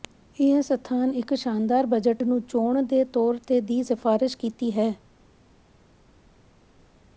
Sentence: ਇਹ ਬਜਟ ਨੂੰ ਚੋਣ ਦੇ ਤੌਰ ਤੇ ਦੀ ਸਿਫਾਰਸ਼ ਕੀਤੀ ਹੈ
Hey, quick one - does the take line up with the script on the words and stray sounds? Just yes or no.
no